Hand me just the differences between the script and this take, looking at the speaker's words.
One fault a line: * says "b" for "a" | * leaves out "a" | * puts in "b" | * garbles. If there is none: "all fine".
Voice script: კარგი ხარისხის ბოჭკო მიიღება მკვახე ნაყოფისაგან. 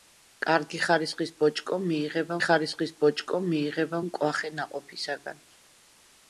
* puts in "ხარისხის ბოჭკო მიიღება"